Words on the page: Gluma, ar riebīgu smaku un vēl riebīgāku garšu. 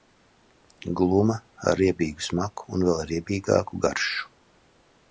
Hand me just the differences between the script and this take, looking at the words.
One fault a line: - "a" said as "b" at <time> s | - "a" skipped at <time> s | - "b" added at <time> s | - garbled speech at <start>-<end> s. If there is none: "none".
none